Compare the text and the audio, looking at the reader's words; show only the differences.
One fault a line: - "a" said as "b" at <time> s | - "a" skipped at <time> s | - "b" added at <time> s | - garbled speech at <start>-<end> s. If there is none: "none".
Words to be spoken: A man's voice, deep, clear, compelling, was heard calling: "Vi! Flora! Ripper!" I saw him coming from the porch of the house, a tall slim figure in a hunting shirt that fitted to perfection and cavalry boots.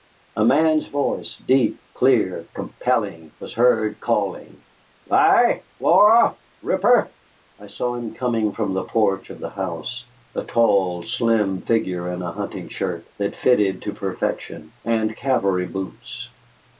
none